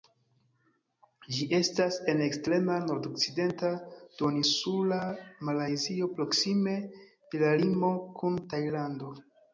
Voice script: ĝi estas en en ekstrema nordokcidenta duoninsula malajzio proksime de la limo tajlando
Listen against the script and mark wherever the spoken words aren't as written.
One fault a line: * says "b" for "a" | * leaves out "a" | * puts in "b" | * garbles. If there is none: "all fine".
* leaves out "en"
* puts in "kun"